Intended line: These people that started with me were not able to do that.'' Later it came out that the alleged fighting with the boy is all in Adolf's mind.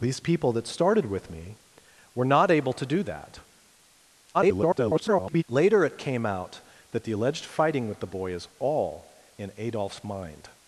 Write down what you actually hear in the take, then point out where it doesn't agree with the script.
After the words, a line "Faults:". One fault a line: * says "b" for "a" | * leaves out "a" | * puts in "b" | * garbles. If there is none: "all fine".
These people that started with me were not able to do that.'' [garbled] Later it came out that the alleged fighting with the boy is all in Adolf's mind.
Faults:
* garbles